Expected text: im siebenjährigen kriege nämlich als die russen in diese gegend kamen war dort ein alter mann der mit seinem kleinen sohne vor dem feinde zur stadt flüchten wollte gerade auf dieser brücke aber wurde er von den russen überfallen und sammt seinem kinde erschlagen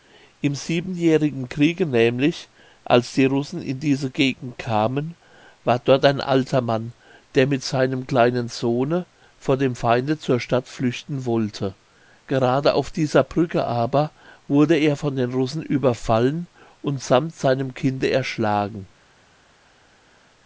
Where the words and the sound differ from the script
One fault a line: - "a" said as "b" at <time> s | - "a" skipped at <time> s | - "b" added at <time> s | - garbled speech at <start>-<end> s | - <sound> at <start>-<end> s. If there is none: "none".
none